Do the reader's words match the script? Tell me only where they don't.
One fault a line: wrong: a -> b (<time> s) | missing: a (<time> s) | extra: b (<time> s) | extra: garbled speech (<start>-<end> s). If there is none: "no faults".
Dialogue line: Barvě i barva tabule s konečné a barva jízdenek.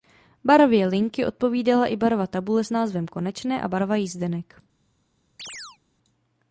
extra: linky odpovídala (0.9 s)
extra: názvem (2.7 s)